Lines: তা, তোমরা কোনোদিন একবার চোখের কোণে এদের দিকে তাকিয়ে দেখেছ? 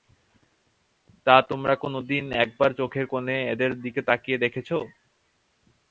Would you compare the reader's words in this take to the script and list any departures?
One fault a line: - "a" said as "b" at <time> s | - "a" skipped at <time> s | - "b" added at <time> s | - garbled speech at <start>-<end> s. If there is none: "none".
none